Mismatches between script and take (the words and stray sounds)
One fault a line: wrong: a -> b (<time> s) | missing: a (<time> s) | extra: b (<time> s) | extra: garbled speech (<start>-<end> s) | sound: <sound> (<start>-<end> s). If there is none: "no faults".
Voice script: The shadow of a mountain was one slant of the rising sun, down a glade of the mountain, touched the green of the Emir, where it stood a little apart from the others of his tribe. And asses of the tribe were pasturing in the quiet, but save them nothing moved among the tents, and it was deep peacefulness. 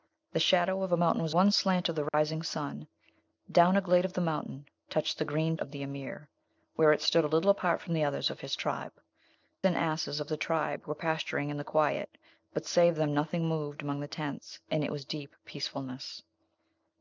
sound: dropout (2.1-2.1 s)